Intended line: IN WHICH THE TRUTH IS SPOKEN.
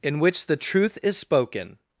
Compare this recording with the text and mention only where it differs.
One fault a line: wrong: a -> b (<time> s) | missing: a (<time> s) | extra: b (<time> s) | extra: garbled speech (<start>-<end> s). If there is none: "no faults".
no faults